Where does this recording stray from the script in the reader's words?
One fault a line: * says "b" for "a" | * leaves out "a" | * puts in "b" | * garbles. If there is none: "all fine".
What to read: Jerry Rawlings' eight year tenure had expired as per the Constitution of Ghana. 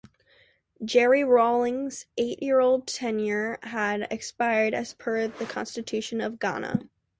all fine